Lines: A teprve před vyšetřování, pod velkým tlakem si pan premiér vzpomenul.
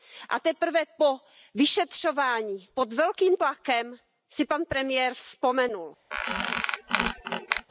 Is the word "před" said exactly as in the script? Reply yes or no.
no